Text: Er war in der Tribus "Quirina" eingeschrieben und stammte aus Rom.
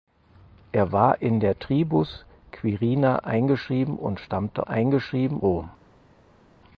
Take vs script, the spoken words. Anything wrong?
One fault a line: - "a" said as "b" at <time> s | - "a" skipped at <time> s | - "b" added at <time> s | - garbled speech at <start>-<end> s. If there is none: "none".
- "aus" said as "eingeschrieben" at 4.6 s